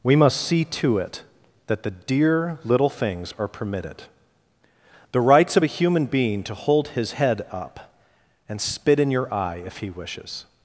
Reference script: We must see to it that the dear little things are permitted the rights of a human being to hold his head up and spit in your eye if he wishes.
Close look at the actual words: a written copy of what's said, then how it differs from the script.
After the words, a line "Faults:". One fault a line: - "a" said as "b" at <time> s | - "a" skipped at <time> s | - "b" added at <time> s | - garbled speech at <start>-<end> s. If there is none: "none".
We must see to it that the dear little things are permitted the rights of a human being to hold his head up and spit in your eye if he wishes.
Faults:
none